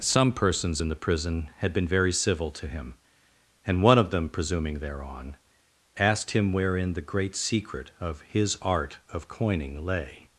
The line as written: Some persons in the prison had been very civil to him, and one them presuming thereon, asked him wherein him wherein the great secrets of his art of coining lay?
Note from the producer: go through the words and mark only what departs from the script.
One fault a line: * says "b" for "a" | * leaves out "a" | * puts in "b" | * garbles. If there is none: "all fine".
* puts in "of"
* leaves out "him wherein"
* says "secret" for "secrets"